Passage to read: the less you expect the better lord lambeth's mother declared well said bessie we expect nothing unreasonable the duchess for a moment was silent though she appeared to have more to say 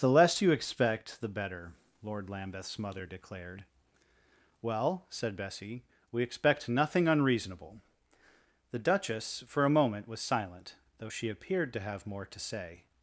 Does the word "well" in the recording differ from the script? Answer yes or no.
no